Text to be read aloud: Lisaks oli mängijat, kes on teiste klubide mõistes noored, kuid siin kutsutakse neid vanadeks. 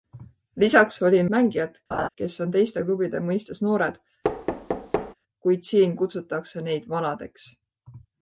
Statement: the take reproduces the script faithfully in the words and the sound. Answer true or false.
false